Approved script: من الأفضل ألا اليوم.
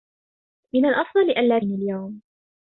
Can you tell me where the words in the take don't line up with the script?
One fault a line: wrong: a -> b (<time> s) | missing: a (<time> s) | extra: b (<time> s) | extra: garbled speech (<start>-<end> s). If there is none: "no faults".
no faults